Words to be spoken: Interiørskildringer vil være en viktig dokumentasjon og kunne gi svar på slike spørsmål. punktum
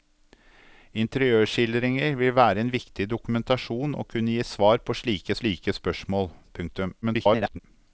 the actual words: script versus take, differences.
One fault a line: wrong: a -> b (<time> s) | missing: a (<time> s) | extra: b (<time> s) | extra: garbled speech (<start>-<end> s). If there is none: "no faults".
extra: slike (5.4 s)
extra: garbled speech (7.0-7.6 s)